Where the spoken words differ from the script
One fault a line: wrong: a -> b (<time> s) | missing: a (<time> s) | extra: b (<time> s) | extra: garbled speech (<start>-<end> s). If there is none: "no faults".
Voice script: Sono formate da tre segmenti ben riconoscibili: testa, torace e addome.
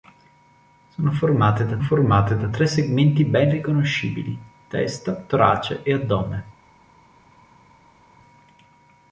extra: formate da (1.8 s)